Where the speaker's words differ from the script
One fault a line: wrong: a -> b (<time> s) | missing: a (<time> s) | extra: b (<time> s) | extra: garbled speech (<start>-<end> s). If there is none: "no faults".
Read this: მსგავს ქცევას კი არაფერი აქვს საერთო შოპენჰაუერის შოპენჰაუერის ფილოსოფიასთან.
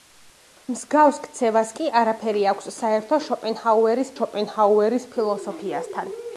no faults